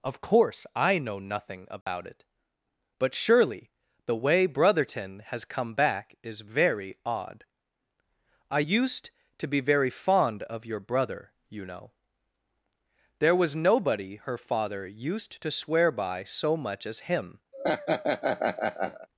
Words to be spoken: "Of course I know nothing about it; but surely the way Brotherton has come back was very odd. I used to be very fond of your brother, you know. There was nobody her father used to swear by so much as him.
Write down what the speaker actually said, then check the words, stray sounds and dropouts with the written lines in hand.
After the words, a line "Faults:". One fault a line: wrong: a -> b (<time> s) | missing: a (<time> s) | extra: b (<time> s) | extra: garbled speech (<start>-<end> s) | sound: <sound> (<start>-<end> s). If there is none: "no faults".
"Of course I know nothing about it; but surely the way Brotherton has come back is very odd. I used to be very fond of your brother, you know. There was nobody her father used to swear by so much as him.
Faults:
sound: dropout (1.8-1.9 s)
wrong: was -> is (6.2 s)
sound: laugh (17.5-19.1 s)